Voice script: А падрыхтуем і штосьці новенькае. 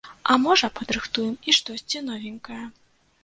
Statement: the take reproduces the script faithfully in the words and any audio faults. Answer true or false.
false